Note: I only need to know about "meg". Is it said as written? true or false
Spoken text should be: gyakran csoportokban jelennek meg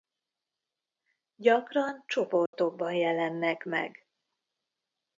true